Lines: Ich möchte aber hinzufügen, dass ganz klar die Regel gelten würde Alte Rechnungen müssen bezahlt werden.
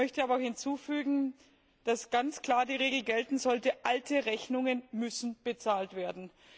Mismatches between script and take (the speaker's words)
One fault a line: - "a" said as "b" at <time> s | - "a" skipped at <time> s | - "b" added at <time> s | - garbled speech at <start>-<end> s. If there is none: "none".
- "würde" said as "sollte" at 3.4 s